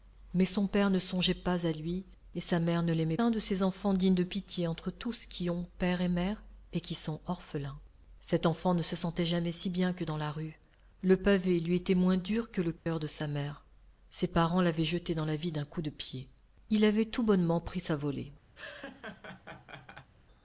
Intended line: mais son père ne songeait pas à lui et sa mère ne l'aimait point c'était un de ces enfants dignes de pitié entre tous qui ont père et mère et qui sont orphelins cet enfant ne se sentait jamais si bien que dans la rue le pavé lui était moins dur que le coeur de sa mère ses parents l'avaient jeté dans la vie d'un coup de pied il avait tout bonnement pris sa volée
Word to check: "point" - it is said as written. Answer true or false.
false